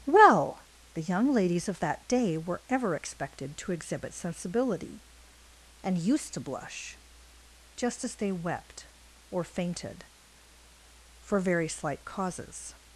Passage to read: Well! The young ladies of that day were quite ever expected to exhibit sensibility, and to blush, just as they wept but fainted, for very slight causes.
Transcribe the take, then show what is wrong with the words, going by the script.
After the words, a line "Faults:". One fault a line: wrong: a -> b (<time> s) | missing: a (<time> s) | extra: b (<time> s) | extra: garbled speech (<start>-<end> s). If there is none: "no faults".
Well! The young ladies of that day were ever expected to exhibit sensibility, and used to blush, just as they wept or fainted, for very slight causes.
Faults:
missing: quite (2.6 s)
extra: used (6.0 s)
wrong: but -> or (9.3 s)